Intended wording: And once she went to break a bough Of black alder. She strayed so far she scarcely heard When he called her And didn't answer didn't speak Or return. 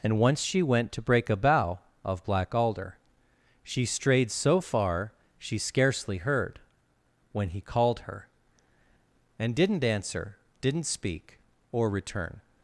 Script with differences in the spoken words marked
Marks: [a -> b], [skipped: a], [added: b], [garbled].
And once she went to break a bough Of black alder. She strayed so far she scarcely heard When he called her And didn't answer didn't speak Or return.